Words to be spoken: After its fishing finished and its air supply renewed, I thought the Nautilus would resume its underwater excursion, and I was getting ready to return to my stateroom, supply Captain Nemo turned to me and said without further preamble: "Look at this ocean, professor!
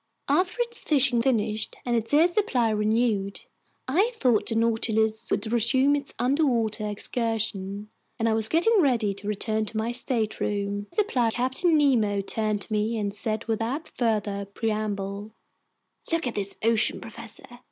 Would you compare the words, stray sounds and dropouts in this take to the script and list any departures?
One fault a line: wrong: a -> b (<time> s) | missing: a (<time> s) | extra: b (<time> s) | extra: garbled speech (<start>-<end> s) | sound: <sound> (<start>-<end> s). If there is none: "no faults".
no faults